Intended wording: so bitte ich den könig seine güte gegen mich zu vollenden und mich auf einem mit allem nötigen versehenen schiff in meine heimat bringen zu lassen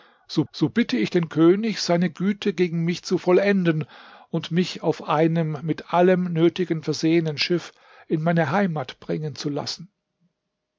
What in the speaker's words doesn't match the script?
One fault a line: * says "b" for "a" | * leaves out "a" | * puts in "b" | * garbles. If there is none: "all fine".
* puts in "so"